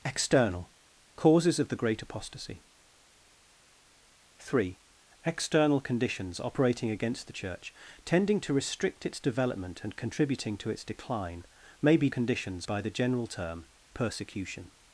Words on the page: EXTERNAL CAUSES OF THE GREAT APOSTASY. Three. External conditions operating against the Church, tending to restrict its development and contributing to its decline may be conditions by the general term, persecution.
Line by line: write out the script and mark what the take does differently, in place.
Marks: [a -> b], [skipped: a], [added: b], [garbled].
EXTERNAL CAUSES OF THE GREAT APOSTASY. Three. External conditions operating against the Church, tending to restrict its development and contributing to its decline may be conditions by the general term, persecution.